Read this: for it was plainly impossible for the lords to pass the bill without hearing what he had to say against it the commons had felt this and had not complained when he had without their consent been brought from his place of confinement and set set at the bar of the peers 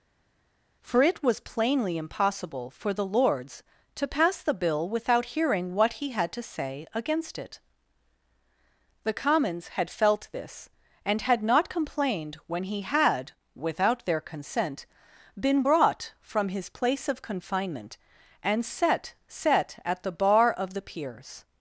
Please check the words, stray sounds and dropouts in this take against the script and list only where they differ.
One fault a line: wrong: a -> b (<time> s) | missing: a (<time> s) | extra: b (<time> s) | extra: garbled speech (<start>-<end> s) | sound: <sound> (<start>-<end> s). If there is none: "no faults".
no faults